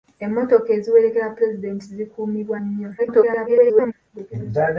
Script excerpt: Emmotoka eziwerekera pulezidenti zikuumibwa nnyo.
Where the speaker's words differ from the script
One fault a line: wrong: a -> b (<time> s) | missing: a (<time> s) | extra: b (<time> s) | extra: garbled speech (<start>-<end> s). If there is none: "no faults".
extra: garbled speech (3.0-3.9 s)